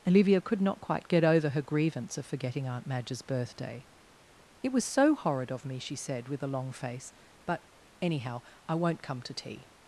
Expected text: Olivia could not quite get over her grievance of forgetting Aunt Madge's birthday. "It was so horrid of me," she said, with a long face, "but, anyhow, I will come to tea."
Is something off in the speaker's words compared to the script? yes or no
yes